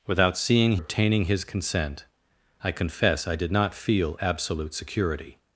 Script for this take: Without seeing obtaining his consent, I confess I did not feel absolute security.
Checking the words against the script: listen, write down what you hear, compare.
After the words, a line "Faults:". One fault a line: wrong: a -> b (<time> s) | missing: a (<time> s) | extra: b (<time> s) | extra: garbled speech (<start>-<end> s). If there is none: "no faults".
Without seeing obtaining his consent, I confess I did not feel absolute security.
Faults:
no faults